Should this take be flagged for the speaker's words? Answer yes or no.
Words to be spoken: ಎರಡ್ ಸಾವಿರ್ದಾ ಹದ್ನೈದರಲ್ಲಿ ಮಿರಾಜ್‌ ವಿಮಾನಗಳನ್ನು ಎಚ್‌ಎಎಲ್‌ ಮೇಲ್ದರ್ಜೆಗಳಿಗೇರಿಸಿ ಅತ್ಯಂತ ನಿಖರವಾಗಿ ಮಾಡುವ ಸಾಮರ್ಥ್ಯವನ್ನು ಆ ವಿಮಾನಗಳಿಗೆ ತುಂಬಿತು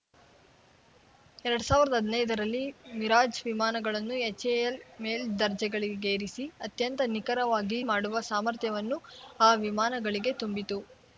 no